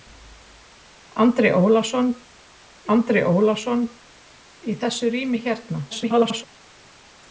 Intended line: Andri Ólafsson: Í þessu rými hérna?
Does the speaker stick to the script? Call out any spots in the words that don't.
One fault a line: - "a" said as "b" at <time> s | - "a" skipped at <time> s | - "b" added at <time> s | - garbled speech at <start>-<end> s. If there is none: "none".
- "andri Ólafsson" added at 3.0 s
- garbled speech at 5.9-6.4 s